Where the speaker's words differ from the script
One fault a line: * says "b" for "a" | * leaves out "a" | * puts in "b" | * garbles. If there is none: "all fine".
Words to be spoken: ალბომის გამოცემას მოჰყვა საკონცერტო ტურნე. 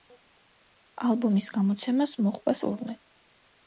* leaves out "საკონცერტო"